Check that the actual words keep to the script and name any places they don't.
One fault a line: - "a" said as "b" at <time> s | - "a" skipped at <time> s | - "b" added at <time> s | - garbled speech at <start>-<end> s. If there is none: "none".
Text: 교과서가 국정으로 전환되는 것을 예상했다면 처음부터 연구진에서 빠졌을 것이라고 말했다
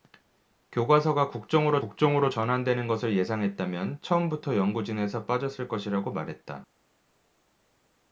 - "국정으로" added at 1.8 s